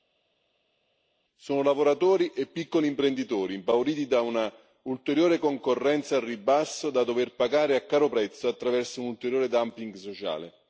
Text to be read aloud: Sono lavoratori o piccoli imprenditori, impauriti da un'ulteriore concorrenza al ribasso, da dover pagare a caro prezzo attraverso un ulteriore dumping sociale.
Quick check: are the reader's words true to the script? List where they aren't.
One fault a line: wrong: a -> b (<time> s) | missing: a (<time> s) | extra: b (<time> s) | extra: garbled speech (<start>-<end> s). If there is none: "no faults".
wrong: o -> e (2.3 s)